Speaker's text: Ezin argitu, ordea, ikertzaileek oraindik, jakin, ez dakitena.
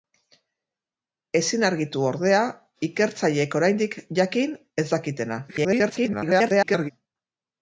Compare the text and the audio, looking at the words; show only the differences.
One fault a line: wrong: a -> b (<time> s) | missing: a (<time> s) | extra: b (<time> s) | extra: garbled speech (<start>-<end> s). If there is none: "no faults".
extra: garbled speech (5.5-6.9 s)